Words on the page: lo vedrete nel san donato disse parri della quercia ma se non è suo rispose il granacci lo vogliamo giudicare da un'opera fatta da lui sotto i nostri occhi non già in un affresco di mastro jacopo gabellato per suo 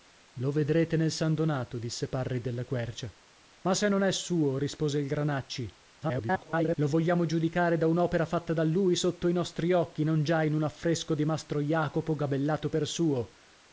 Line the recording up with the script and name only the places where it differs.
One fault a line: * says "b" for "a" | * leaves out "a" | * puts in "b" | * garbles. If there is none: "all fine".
* garbles